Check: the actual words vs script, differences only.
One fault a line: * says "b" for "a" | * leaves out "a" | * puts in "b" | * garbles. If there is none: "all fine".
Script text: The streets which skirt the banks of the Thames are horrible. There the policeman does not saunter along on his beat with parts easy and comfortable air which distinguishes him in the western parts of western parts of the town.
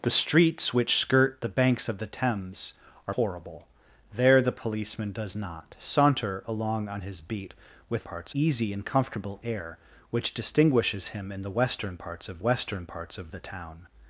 all fine